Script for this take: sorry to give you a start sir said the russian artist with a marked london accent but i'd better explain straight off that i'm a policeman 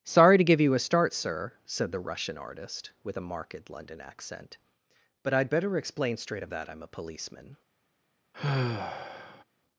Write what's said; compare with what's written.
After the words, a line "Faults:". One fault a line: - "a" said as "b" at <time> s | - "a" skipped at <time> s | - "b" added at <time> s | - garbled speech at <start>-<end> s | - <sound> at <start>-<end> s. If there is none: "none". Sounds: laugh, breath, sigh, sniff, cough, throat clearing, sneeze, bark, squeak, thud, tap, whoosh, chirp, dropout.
sorry to give you a start sir said the russian artist with a marked london accent but i'd better explain straight of that i'm a policeman
Faults:
- "off" said as "of" at 6.4 s
- sigh at 8.3-9.4 s